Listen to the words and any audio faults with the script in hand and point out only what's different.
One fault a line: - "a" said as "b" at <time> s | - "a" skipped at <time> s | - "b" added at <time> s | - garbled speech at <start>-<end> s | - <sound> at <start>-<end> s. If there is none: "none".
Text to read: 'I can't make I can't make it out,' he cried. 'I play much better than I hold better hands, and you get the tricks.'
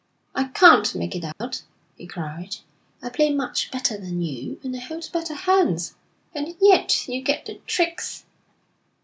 - "I can't make" skipped at 1.1 s
- dropout at 1.3-1.4 s
- "you and" added at 4.2 s
- "yet" added at 6.6 s